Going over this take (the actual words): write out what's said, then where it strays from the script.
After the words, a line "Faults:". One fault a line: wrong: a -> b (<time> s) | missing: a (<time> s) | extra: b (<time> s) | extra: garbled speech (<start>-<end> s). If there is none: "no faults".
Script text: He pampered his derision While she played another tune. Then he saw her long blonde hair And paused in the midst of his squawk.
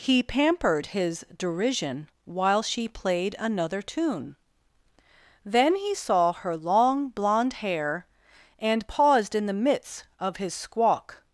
He pampered his derision While she played another tune. Then he saw her long blonde hair And paused in the midst of his squawk.
Faults:
no faults